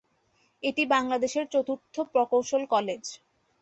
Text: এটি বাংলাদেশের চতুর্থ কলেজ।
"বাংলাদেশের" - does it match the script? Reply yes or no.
yes